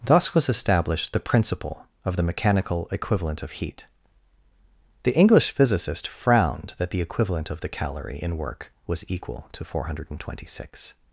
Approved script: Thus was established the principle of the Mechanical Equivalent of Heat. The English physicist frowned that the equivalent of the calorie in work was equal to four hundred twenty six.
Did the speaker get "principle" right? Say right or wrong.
right